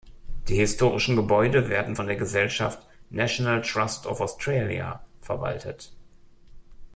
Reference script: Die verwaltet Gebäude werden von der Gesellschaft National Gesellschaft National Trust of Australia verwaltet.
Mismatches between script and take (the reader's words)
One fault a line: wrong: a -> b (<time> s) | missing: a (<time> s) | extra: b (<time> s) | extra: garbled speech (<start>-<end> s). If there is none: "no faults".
wrong: verwaltet -> historischen (0.5 s)
missing: Gesellschaft National (3.6 s)